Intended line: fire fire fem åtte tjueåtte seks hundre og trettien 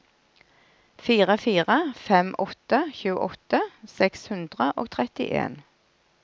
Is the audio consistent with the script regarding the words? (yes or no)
yes